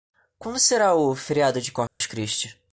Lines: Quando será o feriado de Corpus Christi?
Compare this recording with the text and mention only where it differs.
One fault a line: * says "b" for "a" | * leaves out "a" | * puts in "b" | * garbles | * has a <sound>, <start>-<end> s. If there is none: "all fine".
* has a dropout, 1.9-2.0 s